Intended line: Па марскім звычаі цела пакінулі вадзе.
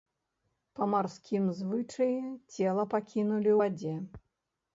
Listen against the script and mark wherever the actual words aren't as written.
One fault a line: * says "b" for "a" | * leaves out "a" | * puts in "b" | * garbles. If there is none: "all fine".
all fine